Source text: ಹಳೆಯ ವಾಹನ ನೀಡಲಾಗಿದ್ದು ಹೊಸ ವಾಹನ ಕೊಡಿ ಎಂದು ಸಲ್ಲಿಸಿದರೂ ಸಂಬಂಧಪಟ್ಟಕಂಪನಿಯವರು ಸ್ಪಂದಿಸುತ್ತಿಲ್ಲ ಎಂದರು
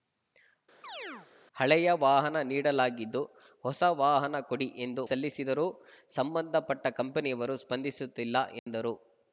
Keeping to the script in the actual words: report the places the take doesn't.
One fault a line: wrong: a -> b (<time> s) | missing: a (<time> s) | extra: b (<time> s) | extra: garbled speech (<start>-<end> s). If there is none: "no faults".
no faults